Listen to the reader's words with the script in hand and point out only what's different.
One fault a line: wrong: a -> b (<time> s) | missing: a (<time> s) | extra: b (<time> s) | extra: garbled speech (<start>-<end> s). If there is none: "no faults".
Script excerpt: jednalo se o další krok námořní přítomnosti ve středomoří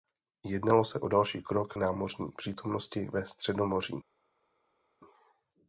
no faults